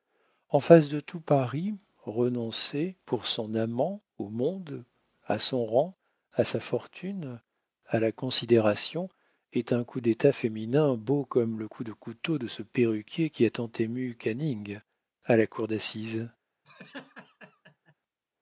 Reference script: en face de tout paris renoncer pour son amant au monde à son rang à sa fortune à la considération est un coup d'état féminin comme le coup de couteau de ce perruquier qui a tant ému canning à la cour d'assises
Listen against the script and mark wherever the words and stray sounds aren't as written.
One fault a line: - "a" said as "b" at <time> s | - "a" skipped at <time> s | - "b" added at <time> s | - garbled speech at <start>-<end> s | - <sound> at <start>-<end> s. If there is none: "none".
- "beau" added at 10.9 s
- laugh at 16.6-17.9 s